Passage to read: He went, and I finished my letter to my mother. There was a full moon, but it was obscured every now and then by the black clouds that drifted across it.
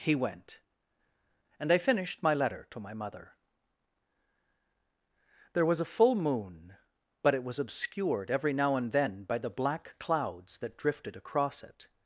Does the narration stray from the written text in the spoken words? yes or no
no